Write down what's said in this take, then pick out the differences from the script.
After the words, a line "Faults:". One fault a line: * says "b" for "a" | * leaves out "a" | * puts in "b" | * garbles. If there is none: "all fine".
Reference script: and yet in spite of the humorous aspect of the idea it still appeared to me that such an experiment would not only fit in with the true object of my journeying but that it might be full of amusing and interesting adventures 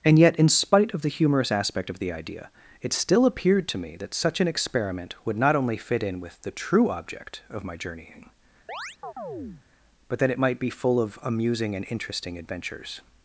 and yet in spite of the humorous aspect of the idea it still appeared to me that such an experiment would not only fit in with the true object of my journeying but that it might be full of amusing and interesting adventures
Faults:
all fine